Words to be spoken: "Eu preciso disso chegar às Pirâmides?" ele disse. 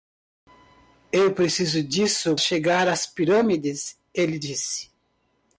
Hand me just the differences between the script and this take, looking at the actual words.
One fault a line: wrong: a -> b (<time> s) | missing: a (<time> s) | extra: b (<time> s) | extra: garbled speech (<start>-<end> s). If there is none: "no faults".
no faults